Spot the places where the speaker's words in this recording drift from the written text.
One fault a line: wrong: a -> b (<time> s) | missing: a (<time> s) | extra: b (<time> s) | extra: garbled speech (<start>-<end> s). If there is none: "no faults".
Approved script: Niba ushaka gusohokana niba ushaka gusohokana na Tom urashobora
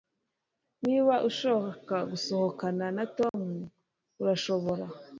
missing: niba ushaka gusohokana (2.9 s)